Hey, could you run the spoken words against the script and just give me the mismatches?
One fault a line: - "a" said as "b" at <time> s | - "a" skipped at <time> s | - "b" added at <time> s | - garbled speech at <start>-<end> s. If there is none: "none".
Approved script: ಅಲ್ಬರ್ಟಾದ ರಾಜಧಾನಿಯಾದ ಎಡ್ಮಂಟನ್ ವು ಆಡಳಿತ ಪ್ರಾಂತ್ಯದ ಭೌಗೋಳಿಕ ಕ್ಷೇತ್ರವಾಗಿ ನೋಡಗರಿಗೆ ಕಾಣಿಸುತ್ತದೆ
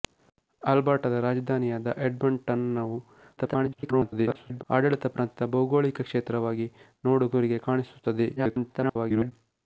- garbled speech at 3.4-4.6 s
- garbled speech at 8.4-9.3 s